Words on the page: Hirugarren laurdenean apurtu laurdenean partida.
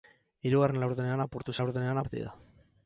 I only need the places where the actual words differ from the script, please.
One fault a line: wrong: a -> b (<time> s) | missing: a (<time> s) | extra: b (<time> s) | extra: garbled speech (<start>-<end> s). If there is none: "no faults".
no faults